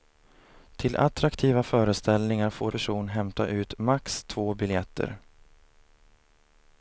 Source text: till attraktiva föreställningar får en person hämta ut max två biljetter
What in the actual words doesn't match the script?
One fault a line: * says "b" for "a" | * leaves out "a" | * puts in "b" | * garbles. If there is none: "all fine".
* leaves out "en"